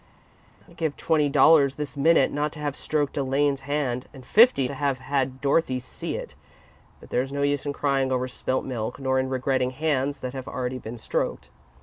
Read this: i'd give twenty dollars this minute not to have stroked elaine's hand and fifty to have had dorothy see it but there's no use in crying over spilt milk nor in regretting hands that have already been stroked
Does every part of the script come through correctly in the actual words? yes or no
yes